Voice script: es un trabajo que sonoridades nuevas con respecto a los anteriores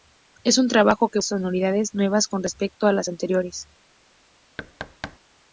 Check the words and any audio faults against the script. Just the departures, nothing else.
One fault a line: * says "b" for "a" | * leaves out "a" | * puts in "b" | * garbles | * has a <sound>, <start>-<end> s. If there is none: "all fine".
* has a thud, 4.6-5.2 s